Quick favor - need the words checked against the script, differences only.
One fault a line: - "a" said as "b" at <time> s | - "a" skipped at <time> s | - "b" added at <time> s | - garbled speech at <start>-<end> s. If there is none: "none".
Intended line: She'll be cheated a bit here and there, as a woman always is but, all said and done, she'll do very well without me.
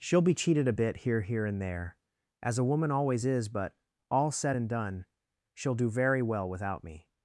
- "here" added at 1.2 s